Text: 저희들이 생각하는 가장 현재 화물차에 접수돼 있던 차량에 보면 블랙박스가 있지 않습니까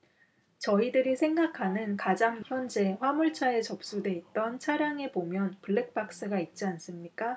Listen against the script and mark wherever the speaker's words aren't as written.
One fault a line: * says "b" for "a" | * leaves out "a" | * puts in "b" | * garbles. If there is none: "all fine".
all fine